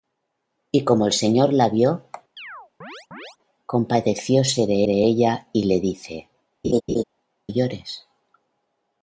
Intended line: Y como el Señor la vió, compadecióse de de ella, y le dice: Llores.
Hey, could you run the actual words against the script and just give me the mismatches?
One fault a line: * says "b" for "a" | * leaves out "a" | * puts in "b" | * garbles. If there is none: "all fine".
all fine